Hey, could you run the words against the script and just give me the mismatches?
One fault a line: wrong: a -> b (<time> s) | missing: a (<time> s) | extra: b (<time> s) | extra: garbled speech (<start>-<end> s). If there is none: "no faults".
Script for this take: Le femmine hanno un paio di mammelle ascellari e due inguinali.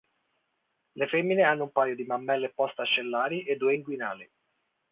extra: post (2.5 s)